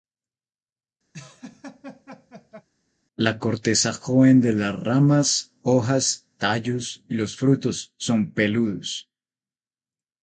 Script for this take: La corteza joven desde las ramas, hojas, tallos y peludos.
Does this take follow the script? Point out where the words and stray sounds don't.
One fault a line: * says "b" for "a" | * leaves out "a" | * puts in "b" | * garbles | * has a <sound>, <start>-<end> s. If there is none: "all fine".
* has a laugh, 1.1-2.7 s
* says "de" for "desde"
* puts in "los frutos son"